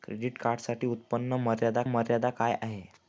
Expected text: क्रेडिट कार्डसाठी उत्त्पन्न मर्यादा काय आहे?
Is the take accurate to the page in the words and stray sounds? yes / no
no